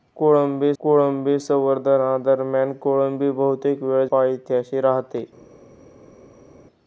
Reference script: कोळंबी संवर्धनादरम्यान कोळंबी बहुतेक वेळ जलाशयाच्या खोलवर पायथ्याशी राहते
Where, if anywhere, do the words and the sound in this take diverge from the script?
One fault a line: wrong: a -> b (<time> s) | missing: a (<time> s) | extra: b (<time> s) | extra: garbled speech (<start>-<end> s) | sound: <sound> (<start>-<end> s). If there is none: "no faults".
extra: कोळंबी (0.8 s)
missing: जलाशयाच्या खोलवर (4.1 s)